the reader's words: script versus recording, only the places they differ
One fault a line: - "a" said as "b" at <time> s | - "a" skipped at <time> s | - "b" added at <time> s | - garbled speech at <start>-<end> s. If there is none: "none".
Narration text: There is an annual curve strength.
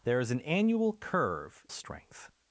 none